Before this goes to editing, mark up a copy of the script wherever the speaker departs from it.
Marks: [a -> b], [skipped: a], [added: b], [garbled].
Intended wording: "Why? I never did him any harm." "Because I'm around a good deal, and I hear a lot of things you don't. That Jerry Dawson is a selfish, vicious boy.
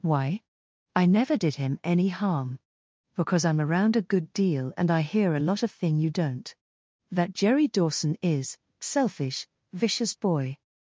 "Why? I never did him any harm." "Because I'm around a good deal, and I hear a lot of [things -> thing] you don't. That Jerry Dawson is [skipped: a] selfish, vicious boy.